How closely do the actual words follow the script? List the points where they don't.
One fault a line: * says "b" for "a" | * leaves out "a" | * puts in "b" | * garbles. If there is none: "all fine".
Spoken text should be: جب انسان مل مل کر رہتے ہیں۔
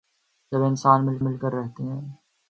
all fine